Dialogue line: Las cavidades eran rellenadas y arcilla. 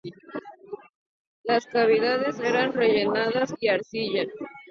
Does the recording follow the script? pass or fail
pass